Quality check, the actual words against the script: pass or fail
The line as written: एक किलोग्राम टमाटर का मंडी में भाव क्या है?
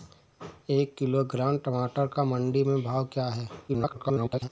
fail